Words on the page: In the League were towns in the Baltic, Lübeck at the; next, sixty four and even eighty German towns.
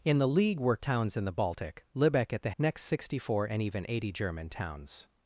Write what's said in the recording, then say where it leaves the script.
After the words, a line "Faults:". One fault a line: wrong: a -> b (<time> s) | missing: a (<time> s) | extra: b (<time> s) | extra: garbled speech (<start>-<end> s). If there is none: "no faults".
In the League were towns in the Baltic, Lübeck at the; next, sixty four and even eighty German towns.
Faults:
no faults